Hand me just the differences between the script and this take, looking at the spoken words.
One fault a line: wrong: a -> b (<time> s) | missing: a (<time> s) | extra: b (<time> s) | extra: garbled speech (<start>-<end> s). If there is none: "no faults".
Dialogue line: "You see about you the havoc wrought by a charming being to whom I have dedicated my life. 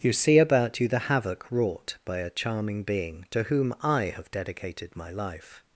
no faults